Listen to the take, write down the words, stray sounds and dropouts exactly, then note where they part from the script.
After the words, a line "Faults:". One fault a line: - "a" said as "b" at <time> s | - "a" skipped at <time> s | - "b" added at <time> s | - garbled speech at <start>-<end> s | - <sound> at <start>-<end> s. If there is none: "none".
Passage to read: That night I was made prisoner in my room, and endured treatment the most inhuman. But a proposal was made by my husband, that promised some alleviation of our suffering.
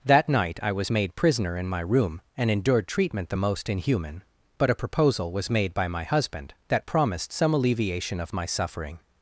That night I was made prisoner in my room, and endured treatment the most inhuman. But a proposal was made by my husband, that promised some alleviation of my suffering.
Faults:
- "our" said as "my" at 8.3 s